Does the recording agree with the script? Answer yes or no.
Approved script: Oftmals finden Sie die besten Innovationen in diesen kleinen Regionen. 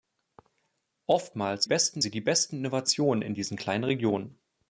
no